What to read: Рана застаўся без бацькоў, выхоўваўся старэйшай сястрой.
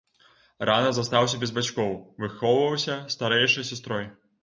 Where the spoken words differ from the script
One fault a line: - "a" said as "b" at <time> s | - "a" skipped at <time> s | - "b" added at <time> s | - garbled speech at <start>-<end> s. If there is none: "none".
none